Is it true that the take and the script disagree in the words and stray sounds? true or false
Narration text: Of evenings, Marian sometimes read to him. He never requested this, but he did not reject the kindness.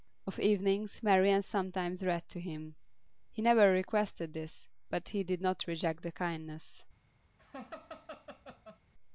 true